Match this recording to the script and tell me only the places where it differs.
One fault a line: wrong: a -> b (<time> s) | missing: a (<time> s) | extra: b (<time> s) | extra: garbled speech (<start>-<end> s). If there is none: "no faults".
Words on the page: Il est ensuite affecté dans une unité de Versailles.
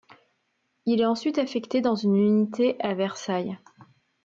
wrong: de -> à (2.8 s)